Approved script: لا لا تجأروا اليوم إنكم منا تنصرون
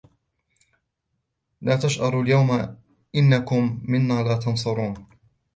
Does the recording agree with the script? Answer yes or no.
no